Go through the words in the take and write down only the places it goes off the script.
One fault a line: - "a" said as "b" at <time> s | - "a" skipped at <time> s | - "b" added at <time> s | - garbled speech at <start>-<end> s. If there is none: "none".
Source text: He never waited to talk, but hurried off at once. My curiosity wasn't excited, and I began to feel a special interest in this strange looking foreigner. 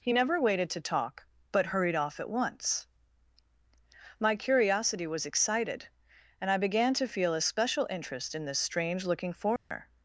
- "wasn't" said as "was" at 5.1 s